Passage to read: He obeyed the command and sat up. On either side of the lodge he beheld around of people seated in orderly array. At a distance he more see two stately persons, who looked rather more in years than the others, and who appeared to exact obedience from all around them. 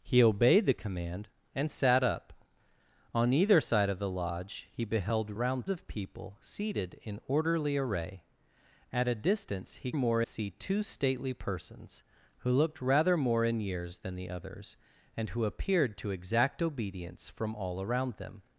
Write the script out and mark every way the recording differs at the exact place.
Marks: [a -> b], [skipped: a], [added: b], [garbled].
He obeyed the command and sat up. On either side of the lodge he beheld around of people seated in orderly array. At a distance he more see two stately persons, who looked rather more in years than the others, and who appeared to exact obedience from all around them.